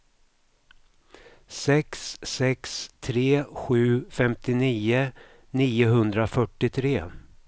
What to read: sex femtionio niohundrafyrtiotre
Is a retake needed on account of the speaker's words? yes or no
yes